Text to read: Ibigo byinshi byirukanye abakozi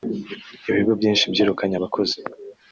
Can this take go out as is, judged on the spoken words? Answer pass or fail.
pass